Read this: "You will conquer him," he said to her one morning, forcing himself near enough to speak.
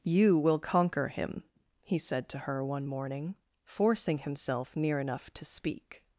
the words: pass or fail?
pass